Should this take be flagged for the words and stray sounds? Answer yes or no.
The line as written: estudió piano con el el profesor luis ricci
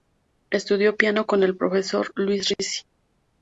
yes